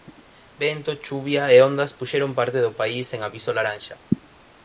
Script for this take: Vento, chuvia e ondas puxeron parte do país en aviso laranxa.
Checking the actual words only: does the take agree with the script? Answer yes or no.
yes